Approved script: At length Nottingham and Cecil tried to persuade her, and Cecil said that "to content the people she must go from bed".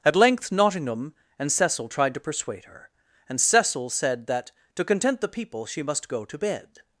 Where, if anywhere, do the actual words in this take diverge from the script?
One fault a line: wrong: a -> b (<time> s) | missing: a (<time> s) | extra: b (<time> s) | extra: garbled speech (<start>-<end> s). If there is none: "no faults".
wrong: from -> to (6.2 s)